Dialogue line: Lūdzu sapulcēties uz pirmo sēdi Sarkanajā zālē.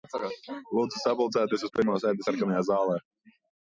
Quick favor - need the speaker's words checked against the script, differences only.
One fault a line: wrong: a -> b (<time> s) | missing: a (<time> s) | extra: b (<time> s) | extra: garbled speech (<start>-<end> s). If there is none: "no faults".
no faults